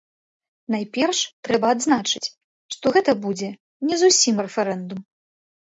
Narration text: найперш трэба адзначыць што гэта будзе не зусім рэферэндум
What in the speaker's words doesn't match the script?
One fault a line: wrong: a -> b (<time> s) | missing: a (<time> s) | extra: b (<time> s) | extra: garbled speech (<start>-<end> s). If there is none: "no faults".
no faults